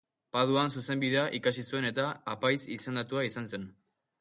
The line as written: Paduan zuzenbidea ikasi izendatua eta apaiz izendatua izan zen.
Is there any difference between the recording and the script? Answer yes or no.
yes